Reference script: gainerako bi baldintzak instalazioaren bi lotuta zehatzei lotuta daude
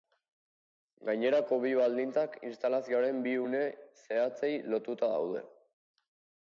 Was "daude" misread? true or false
false